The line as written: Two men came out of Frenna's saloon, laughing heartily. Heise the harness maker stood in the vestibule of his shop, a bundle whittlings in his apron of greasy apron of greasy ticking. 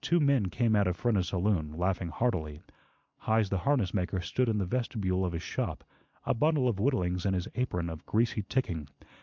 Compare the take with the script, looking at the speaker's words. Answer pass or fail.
fail